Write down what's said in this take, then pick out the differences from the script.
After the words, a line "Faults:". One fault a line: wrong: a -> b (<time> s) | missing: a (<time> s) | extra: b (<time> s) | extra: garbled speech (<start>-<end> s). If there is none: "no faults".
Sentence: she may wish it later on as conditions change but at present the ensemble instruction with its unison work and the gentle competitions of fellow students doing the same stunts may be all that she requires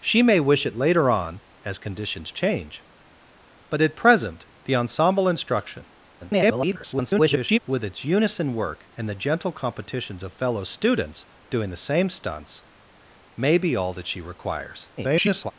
she may wish it later on as conditions change but at present the ensemble instruction [garbled] with its unison work and the gentle competitions of fellow students doing the same stunts may be all that she requires [garbled]
Faults:
extra: garbled speech (6.2-7.6 s)
extra: garbled speech (15.0-15.5 s)